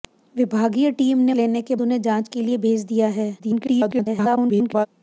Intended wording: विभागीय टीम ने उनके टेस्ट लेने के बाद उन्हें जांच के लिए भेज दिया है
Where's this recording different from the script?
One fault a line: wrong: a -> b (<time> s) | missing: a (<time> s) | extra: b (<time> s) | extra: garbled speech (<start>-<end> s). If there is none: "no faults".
missing: उनके टेस्ट (1.3 s)
missing: बाद (1.7 s)
extra: garbled speech (3.4-4.9 s)